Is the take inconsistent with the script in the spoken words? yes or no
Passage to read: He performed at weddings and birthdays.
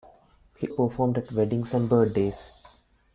no